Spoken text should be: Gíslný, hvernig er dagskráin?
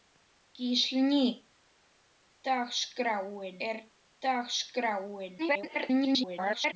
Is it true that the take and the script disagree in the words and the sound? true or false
true